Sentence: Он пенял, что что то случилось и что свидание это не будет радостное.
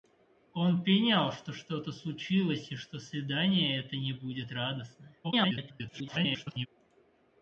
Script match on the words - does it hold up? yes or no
no